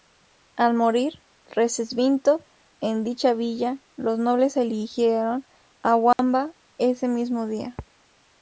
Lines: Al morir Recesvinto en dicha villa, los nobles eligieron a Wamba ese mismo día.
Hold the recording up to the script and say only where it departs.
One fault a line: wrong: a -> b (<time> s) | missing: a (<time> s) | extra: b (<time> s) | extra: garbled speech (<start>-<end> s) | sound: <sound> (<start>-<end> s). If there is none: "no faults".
sound: dropout (6.1-6.2 s)